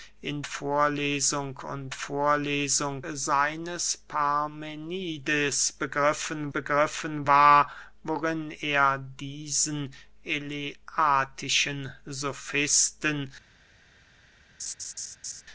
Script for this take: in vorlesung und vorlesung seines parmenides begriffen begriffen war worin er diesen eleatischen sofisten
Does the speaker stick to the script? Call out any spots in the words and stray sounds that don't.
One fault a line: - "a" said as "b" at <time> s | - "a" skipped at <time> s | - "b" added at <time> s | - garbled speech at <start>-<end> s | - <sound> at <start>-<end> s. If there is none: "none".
- laugh at 14.6-15.4 s